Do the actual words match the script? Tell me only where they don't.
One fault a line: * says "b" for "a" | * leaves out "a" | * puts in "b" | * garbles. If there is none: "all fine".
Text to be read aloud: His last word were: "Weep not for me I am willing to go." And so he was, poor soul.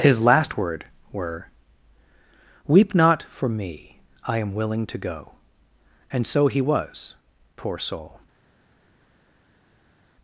all fine